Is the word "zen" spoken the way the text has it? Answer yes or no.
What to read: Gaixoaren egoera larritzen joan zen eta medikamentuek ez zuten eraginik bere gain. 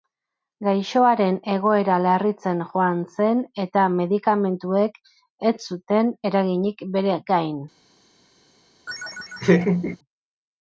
yes